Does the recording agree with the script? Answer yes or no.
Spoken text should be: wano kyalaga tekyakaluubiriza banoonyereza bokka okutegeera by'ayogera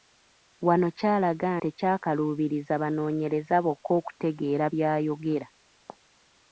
yes